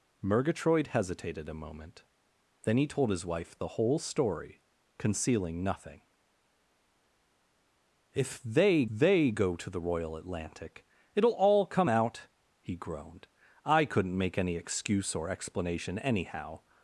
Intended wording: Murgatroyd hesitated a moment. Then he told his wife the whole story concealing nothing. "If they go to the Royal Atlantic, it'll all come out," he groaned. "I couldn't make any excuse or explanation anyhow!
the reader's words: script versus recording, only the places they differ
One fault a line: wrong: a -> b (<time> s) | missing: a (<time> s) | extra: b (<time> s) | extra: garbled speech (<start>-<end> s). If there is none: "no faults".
extra: they (8.9 s)